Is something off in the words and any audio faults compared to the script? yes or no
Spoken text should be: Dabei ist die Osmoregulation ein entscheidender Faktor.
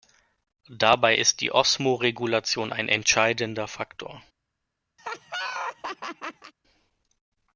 yes